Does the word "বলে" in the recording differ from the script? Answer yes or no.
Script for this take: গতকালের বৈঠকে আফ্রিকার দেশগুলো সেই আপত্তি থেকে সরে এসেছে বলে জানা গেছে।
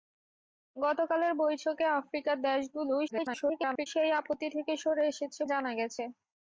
yes